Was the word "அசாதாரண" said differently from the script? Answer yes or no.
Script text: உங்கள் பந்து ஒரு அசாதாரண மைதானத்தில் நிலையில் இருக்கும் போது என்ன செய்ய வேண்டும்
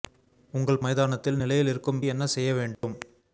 yes